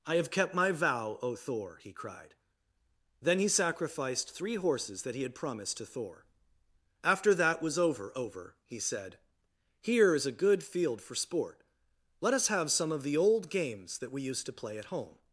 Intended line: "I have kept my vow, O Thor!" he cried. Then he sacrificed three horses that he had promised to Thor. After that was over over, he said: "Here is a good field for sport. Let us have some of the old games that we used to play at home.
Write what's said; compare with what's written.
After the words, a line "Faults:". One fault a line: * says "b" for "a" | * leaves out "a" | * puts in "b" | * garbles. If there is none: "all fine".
"I have kept my vow, O Thor!" he cried. Then he sacrificed three horses that he had promised to Thor. After that was over over, he said: "Here is a good field for sport. Let us have some of the old games that we used to play at home.
Faults:
all fine